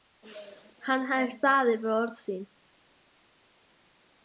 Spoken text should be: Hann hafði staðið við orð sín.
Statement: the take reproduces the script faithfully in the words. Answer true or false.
true